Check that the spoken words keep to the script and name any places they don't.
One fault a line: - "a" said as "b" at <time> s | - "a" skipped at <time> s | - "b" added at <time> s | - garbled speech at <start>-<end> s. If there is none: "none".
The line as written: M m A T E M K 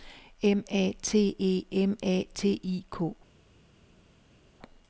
- "m" skipped at 0.6 s
- "A T I" added at 2.0 s